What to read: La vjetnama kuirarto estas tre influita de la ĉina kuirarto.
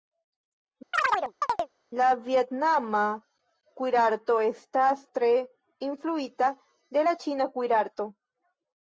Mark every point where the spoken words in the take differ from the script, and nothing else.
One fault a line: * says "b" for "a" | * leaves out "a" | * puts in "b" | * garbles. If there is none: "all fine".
all fine